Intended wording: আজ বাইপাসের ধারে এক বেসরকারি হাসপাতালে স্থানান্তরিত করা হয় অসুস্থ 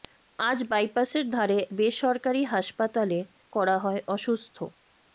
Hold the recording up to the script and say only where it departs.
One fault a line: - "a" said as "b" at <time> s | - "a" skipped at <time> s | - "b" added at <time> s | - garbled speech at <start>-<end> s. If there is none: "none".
- "এক" skipped at 1.6 s
- "স্থানান্তরিত" skipped at 3.2 s